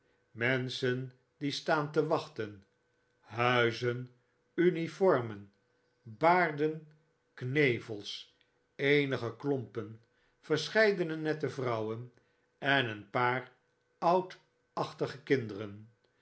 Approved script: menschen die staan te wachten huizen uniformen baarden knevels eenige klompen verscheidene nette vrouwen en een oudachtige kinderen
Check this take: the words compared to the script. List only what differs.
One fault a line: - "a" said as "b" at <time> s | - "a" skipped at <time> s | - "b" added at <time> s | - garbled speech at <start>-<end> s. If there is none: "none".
- "paar" added at 13.1 s